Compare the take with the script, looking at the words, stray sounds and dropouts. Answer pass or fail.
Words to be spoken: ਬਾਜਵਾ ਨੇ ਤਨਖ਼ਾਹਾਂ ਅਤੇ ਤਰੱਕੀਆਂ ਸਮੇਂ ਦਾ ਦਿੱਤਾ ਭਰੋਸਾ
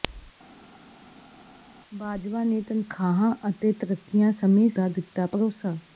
pass